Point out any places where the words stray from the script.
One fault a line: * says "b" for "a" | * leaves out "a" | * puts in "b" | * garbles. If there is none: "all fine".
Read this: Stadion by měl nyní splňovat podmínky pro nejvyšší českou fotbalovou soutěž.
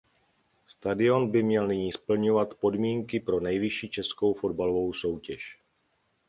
all fine